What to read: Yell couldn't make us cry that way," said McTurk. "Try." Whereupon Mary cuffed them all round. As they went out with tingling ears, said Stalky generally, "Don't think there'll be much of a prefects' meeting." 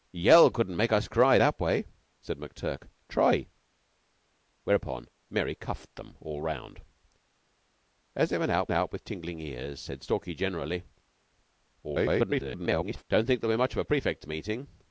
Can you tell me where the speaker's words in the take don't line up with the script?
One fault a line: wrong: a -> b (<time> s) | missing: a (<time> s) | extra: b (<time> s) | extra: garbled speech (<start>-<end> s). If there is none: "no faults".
extra: out (8.7 s)
extra: garbled speech (11.8-13.0 s)